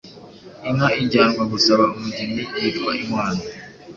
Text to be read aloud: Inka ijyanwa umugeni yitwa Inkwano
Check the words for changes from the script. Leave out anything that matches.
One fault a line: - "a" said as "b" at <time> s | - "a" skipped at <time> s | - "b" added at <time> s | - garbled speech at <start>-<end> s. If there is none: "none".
- "gusaba" added at 1.5 s